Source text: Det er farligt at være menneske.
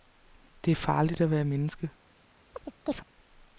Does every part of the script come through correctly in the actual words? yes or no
yes